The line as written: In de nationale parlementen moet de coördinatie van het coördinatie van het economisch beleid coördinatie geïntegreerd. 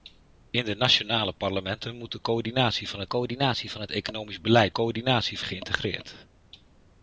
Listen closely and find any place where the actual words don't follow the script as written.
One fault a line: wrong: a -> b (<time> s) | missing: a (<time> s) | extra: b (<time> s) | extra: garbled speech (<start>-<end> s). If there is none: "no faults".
no faults